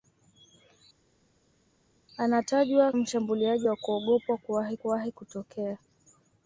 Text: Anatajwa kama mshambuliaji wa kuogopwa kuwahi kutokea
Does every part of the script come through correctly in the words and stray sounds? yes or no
no